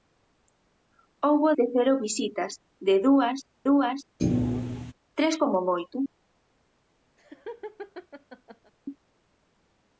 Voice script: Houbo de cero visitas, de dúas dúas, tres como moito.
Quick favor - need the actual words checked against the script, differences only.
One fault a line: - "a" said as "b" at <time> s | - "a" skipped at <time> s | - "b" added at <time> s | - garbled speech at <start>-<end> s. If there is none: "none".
none